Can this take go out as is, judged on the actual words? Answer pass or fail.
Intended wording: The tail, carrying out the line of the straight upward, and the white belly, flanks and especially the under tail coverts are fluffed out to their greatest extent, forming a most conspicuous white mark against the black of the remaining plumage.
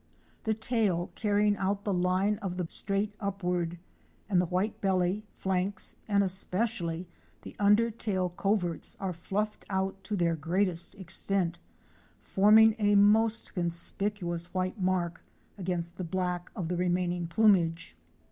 pass